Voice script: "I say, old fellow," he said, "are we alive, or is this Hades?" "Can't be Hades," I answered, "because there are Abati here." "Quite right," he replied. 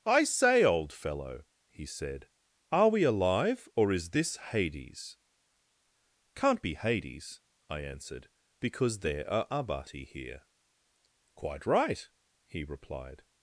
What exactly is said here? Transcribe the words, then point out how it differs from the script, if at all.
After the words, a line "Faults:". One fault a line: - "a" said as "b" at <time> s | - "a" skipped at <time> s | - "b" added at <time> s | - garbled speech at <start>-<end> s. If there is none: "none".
"I say, old fellow," he said, "are we alive, or is this Hades?" "Can't be Hades," I answered, "because there are Abati here." "Quite right," he replied.
Faults:
none